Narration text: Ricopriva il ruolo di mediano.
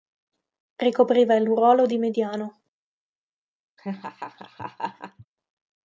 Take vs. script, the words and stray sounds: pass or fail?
fail